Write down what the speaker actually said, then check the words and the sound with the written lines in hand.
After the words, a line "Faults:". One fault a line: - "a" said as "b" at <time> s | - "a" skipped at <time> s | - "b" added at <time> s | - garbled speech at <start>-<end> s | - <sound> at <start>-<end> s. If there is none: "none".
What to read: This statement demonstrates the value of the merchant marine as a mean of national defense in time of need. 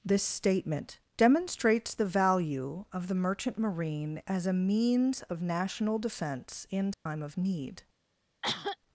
This statement demonstrates the value of the merchant marine as a means of national defense in time of need.
Faults:
- "mean" said as "means" at 4.5 s
- dropout at 6.9-7.1 s
- cough at 8.4-8.8 s